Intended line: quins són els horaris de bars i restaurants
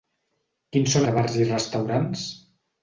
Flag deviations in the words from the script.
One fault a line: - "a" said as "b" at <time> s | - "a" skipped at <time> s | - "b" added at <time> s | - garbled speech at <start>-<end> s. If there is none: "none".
- "els horaris" skipped at 1.1 s